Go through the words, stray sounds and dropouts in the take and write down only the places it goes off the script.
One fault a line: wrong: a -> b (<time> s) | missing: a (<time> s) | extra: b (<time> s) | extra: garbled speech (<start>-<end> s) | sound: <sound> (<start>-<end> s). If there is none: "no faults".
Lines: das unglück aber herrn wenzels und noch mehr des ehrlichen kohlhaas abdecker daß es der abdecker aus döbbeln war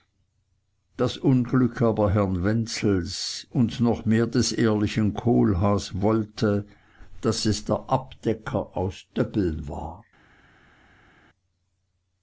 wrong: abdecker -> wollte (6.0 s)